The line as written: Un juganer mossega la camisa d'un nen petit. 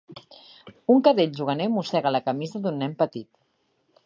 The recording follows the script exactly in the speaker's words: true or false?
false